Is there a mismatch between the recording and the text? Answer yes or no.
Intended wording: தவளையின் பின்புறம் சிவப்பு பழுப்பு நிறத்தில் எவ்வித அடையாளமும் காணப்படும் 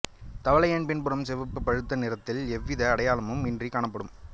yes